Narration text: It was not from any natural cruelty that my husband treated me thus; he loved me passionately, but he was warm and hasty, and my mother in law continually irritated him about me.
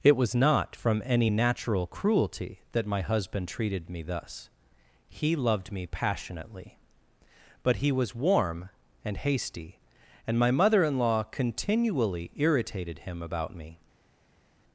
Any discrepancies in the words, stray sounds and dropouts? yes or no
no